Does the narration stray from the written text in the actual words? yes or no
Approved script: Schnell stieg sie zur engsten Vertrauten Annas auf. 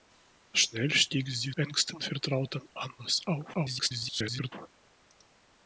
yes